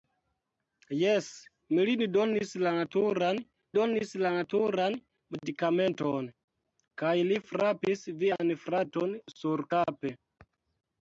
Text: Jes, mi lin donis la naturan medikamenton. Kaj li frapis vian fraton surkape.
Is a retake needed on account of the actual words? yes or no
yes